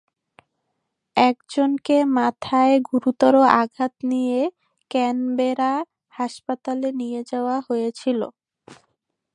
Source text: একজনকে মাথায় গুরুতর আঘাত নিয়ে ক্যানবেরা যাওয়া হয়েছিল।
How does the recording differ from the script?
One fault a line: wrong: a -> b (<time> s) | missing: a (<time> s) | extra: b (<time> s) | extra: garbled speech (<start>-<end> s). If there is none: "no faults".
extra: হাসপাতালে নিয়ে (6.1 s)